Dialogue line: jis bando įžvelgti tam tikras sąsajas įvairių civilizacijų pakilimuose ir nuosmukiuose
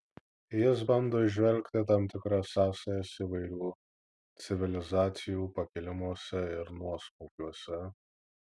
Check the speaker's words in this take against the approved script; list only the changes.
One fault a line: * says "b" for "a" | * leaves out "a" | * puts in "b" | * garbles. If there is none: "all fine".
all fine